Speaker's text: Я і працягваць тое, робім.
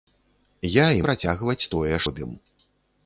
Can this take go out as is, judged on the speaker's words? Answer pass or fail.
pass